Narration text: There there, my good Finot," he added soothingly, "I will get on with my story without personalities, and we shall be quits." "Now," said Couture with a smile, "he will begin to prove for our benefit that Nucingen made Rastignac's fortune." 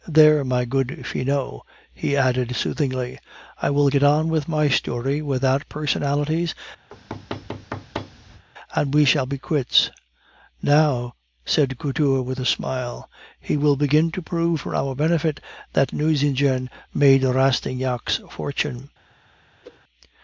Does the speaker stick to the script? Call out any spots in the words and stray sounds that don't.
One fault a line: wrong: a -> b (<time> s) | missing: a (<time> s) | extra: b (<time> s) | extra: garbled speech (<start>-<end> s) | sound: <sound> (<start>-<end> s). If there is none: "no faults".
missing: there (0.4 s)
sound: thud (6.9-8.4 s)
sound: whoosh (19.6-19.8 s)